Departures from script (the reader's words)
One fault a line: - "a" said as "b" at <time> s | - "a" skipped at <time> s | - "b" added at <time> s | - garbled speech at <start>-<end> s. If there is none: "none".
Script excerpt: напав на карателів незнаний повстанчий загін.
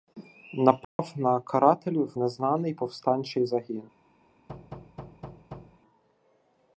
none